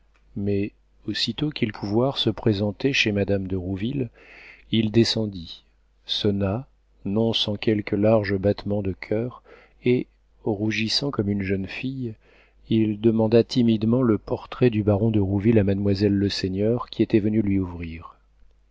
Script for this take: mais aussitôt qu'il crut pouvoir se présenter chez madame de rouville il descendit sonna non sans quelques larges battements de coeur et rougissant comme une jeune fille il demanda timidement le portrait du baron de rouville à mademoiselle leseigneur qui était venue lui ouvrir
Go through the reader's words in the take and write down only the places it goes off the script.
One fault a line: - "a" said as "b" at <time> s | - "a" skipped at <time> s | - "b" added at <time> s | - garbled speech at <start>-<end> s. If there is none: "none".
- "crut" skipped at 1.7 s